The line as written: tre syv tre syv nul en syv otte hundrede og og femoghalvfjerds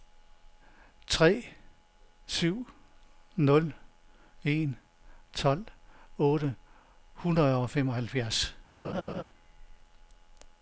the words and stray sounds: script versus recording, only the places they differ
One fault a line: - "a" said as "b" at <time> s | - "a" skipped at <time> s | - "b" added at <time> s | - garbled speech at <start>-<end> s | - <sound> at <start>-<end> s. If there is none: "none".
- "tre syv" skipped at 2.7 s
- "syv" said as "tolv" at 5.3 s
- "og" skipped at 7.7 s
- laugh at 8.8-9.2 s